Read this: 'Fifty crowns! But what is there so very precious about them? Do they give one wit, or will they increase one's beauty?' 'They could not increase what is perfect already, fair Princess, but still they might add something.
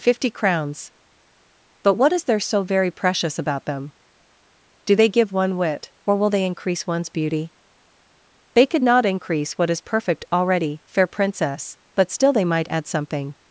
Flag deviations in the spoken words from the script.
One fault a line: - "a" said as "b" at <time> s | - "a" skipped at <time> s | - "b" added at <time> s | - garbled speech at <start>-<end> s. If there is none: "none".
none